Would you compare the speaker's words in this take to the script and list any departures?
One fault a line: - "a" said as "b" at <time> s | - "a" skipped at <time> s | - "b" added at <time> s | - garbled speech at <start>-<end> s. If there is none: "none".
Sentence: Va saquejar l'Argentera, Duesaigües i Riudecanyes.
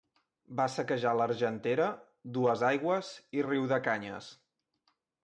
none